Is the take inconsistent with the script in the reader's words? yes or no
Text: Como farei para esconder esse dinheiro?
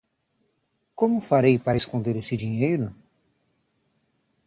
no